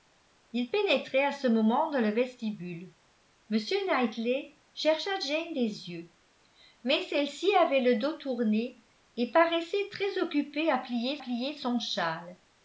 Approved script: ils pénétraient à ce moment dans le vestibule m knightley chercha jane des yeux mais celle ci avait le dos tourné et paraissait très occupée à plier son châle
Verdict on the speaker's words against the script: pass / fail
fail